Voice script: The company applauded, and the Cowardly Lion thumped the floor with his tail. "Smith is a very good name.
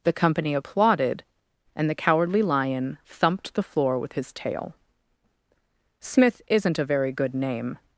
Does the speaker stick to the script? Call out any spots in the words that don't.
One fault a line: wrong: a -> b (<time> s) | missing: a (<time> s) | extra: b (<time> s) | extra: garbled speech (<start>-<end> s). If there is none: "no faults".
wrong: is -> isn't (6.5 s)